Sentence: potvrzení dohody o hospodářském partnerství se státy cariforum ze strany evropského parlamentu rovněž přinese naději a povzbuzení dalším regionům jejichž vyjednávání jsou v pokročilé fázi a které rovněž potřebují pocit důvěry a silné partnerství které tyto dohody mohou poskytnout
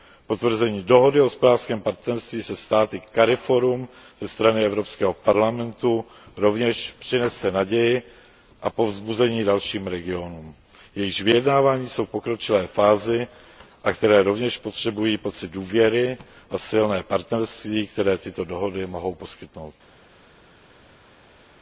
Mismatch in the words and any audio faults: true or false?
false